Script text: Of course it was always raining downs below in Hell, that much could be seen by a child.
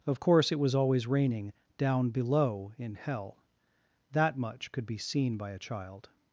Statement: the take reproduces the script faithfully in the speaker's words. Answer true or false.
false